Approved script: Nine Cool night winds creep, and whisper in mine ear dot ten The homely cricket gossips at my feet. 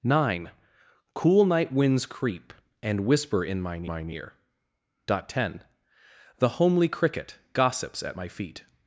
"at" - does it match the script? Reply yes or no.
yes